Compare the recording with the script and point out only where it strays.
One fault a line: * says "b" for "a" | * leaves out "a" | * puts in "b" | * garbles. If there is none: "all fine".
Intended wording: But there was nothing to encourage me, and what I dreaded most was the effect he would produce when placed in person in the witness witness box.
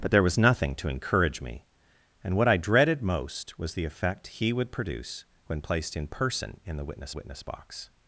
all fine